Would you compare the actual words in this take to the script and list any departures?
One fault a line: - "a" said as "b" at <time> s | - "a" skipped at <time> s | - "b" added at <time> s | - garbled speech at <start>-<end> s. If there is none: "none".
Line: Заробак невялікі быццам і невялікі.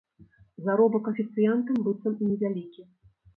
- "невялікі" said as "афіцыянтам" at 1.1 s